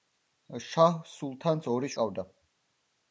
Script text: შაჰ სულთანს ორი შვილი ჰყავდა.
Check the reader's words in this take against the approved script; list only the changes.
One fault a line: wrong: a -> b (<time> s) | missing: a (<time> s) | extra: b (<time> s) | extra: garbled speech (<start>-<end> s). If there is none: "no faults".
missing: შვილი (1.9 s)